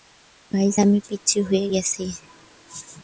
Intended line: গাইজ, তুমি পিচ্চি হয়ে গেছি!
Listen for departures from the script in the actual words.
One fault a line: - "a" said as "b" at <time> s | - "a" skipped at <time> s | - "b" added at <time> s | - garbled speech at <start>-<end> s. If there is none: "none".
- "তুমি" said as "আমি" at 0.8 s